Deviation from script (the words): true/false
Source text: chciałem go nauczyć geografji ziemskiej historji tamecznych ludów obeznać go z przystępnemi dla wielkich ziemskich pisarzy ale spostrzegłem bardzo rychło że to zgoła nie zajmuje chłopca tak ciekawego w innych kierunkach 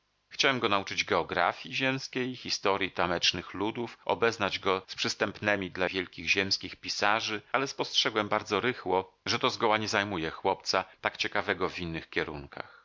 false